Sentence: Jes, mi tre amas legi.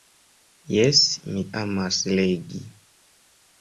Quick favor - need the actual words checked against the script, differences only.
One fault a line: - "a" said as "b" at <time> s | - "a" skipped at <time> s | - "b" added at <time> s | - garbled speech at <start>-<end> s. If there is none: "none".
- "tre" skipped at 1.4 s